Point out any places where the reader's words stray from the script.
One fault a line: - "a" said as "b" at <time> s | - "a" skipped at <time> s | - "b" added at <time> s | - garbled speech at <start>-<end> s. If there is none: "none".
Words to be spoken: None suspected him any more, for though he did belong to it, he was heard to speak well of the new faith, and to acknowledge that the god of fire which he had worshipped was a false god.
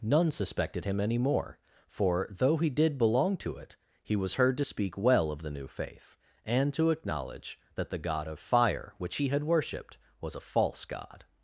none